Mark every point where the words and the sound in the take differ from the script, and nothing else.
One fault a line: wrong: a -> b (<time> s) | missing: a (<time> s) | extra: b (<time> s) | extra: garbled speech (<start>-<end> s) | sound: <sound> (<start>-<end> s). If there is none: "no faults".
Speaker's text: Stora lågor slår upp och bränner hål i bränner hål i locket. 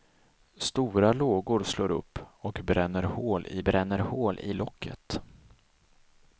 no faults